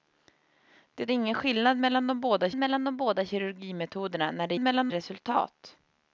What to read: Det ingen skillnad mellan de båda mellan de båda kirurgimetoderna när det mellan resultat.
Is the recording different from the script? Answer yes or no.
no